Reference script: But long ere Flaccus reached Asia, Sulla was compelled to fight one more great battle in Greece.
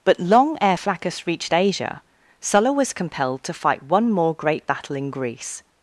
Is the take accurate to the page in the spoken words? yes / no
yes